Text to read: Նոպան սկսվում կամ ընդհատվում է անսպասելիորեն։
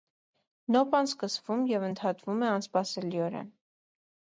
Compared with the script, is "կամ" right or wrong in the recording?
wrong